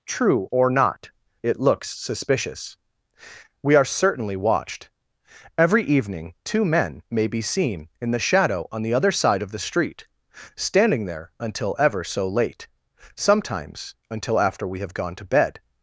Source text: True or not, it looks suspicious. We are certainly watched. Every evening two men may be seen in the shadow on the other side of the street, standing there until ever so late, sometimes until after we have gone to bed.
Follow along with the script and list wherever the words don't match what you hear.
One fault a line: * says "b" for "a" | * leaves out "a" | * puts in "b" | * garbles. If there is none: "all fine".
all fine